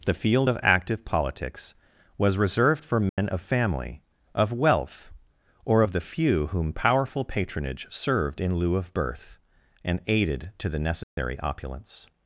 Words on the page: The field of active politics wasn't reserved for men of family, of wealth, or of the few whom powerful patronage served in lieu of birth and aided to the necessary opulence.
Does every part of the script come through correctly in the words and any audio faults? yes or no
no